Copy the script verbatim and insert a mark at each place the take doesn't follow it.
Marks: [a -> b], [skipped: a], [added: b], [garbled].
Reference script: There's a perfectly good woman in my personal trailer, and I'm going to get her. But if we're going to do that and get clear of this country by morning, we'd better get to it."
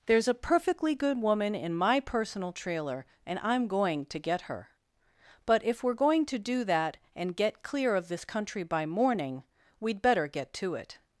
There's a perfectly good woman in my personal trailer, and I'm going to get her. But if we're going to do that and get clear of this country by morning, we'd better get to it."